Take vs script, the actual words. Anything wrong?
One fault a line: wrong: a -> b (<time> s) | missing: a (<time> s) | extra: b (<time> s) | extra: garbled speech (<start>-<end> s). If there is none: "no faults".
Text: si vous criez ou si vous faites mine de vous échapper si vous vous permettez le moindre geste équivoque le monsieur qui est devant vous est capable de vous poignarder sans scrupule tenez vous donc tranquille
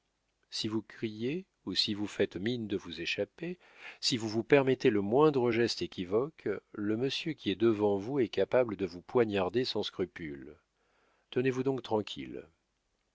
no faults